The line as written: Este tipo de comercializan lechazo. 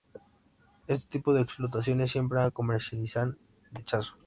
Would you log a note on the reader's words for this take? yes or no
yes